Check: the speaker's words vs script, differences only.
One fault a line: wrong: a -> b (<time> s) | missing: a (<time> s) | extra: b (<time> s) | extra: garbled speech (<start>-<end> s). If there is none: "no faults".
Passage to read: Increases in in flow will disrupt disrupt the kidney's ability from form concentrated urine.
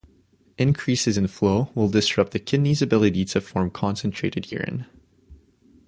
missing: in (1.3 s)
missing: disrupt (2.3 s)
wrong: from -> to (3.3 s)